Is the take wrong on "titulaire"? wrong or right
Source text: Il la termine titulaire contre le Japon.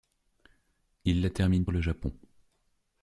wrong